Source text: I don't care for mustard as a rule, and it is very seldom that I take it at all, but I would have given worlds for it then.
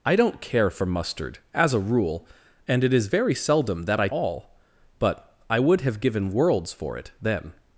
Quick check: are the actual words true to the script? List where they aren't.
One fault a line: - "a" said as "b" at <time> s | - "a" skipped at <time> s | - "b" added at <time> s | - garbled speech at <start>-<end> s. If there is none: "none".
- "take it at" skipped at 4.1 s